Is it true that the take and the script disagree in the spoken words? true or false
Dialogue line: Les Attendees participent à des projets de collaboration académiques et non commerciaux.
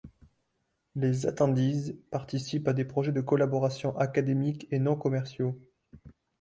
false